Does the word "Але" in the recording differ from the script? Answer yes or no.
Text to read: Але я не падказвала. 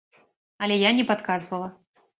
no